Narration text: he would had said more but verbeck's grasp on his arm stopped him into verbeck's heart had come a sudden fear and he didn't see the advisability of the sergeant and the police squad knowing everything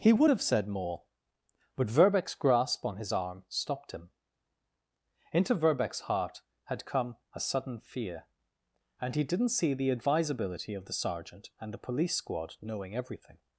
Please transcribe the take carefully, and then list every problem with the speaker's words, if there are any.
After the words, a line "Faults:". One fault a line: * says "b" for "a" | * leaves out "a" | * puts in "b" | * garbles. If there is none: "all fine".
he would have said more but verbeck's grasp on his arm stopped him into verbeck's heart had come a sudden fear and he didn't see the advisability of the sergeant and the police squad knowing everything
Faults:
* says "have" for "had"